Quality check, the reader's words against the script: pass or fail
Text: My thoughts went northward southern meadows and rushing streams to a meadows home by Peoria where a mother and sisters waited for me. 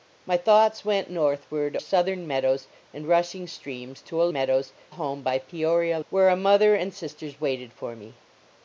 pass